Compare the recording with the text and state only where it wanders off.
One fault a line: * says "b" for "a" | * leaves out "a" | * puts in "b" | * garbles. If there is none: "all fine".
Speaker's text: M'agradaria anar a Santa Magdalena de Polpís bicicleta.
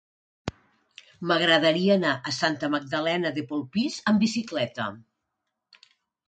* puts in "amb"